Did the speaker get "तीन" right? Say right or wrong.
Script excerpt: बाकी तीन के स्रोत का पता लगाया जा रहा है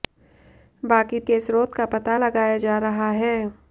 wrong